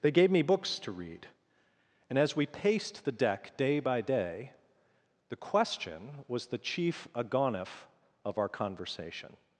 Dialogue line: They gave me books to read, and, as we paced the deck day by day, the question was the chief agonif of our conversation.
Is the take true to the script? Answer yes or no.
yes